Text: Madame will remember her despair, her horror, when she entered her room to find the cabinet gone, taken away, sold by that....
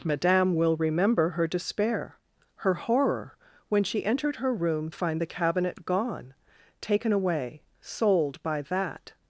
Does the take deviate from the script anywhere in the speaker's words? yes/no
yes